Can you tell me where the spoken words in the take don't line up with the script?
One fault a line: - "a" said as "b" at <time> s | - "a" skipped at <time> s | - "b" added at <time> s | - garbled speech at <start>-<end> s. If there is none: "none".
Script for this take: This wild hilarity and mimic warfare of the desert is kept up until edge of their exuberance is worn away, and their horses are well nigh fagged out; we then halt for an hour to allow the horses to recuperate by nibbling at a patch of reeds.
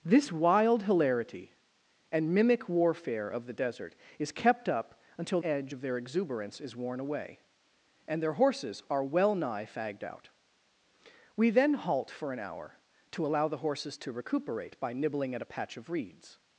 none